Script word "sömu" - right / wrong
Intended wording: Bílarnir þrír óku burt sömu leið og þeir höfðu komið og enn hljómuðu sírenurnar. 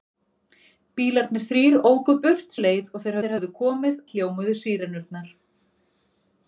wrong